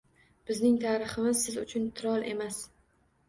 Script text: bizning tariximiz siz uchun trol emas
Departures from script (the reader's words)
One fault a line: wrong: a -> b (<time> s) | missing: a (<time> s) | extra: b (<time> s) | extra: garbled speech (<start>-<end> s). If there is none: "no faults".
no faults